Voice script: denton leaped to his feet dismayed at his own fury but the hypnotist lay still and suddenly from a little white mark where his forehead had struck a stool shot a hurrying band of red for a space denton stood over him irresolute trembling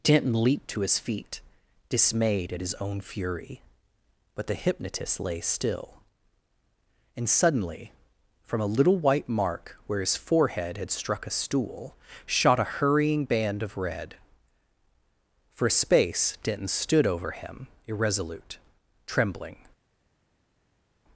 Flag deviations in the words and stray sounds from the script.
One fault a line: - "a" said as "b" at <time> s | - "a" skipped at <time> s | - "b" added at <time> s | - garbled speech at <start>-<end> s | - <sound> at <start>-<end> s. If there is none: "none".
none